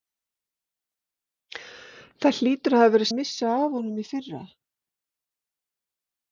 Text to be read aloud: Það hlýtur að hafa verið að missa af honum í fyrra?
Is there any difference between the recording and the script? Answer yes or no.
no